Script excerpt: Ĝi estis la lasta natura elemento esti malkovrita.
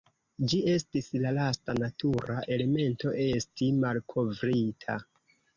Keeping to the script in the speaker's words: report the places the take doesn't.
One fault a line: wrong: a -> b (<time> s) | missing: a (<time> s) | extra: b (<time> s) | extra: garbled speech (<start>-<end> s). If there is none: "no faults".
no faults